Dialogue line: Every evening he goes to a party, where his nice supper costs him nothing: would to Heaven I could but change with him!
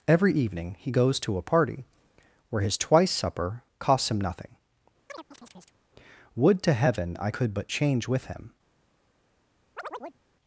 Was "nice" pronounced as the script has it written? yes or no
no